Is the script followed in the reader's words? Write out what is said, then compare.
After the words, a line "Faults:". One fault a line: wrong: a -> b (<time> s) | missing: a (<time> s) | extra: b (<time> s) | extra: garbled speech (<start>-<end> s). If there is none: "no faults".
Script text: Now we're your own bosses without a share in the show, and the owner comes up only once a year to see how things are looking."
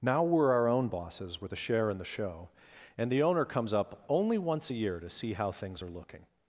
Now we're our own bosses with a share in the show, and the owner comes up only once a year to see how things are looking."
Faults:
wrong: your -> our (0.5 s)
wrong: without -> with (1.4 s)